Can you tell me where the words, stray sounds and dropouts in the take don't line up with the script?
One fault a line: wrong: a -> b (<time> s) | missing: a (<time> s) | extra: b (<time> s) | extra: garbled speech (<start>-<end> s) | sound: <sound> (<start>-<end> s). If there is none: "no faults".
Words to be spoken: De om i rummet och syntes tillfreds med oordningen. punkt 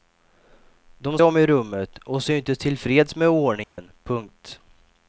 sound: dropout (3.6-3.8 s)